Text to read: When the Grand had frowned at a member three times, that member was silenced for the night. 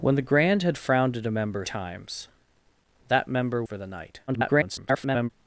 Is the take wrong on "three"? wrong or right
wrong